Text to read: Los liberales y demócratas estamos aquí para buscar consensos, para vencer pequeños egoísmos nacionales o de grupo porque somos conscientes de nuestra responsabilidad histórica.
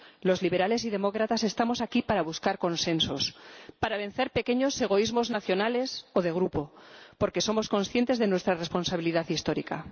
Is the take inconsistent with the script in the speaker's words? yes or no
no